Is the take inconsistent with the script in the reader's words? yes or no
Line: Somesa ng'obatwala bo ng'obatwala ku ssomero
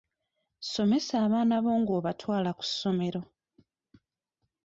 yes